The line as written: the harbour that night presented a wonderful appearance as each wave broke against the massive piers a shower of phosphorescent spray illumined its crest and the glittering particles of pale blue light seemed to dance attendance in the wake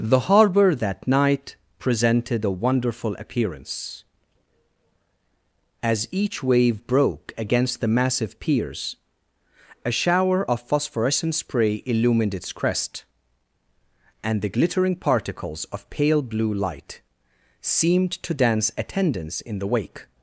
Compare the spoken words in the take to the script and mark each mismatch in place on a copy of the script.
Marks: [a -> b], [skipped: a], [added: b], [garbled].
the harbour that night presented a wonderful appearance as each wave broke against the massive piers a shower of phosphorescent spray illumined its crest and the glittering particles of pale blue light seemed to dance attendance in the wake